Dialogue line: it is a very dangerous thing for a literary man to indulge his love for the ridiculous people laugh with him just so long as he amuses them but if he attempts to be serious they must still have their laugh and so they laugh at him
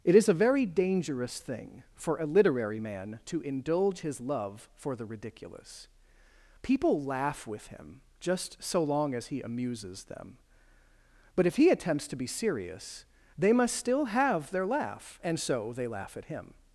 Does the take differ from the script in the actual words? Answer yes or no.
no